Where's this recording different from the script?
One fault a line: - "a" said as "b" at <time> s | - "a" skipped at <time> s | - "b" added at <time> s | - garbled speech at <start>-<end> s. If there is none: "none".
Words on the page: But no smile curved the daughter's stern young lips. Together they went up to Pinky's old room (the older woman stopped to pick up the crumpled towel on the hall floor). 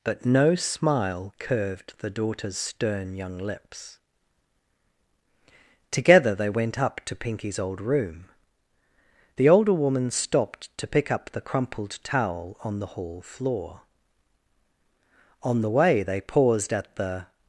- "On the way they paused at the" added at 15.4 s